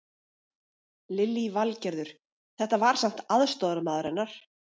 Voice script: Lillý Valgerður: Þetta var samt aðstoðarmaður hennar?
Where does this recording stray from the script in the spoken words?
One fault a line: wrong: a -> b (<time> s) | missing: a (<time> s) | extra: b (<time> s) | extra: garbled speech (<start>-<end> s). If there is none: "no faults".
no faults